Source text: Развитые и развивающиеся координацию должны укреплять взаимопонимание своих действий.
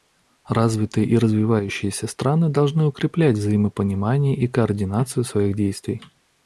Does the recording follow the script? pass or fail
fail